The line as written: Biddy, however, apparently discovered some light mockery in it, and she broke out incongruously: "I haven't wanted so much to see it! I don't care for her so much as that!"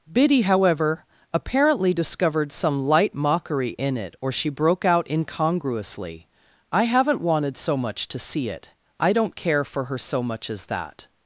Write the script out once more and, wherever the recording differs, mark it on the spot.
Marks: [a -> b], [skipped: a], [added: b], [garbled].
Biddy, however, apparently discovered some light mockery in it, [and -> or] she broke out incongruously: "I haven't wanted so much to see it! I don't care for her so much as that!"